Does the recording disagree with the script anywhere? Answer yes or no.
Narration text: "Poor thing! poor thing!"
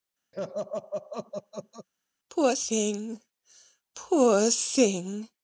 no